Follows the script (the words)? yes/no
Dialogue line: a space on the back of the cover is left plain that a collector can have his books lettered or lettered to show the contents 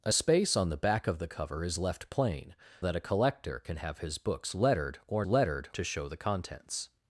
yes